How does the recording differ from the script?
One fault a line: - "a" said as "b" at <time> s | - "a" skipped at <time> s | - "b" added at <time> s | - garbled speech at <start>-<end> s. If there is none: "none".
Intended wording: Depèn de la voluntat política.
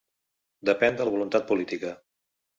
none